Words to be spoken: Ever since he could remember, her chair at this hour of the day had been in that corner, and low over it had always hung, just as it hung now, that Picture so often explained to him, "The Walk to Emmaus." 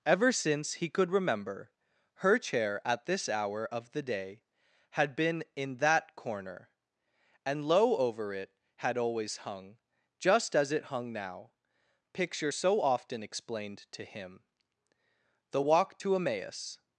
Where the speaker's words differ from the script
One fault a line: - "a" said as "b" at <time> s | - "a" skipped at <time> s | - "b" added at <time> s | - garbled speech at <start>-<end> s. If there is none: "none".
- "that" skipped at 11.5 s